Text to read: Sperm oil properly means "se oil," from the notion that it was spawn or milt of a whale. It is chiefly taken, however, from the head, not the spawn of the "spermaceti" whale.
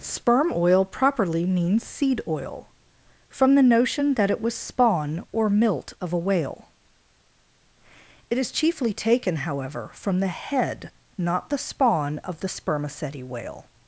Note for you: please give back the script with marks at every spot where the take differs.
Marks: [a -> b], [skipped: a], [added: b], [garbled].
Sperm oil properly means ["se -> seed] oil," from the notion that it was spawn or milt of a whale. It is chiefly taken, however, from the head, not the spawn of the "spermaceti" whale.